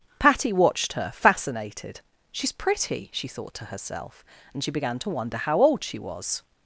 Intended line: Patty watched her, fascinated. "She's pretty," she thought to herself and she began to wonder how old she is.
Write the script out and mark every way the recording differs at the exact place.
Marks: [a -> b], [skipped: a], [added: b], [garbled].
Patty watched her, fascinated. "She's pretty," she thought to herself and she began to wonder how old she [is. -> was]